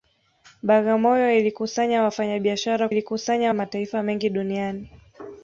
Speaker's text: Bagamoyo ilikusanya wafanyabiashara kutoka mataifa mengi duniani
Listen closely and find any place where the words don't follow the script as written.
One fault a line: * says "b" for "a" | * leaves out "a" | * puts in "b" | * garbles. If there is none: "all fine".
* says "ilikusanya" for "kutoka"